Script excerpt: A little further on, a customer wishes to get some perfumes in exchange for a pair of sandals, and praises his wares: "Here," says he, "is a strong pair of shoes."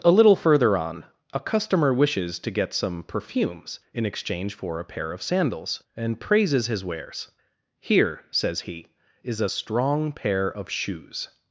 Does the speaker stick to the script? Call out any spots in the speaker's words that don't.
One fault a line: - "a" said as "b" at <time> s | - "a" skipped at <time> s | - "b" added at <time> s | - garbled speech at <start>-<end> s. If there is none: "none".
none